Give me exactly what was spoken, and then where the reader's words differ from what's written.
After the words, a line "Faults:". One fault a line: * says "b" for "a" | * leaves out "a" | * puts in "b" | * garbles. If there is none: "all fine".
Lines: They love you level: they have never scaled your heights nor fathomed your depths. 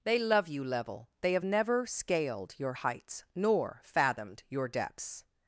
They love you level: they have never scaled your heights nor fathomed your depths.
Faults:
all fine